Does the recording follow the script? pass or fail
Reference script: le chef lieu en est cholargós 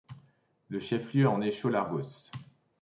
pass